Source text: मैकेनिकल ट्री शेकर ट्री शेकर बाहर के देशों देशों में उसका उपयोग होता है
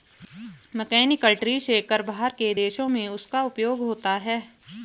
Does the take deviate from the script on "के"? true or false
false